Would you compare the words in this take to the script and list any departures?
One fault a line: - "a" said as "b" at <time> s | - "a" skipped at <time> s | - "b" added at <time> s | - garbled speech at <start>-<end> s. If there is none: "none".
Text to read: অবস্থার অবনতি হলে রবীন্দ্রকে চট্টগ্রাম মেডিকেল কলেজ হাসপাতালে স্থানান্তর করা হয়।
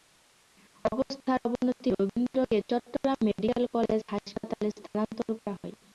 - "হলে" skipped at 1.9 s